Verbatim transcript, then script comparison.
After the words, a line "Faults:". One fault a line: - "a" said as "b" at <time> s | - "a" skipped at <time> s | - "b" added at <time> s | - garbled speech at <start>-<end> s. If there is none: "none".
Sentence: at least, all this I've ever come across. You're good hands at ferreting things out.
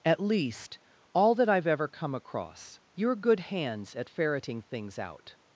at least, all that I've ever come across. You're good hands at ferreting things out.
Faults:
- "this" said as "that" at 1.4 s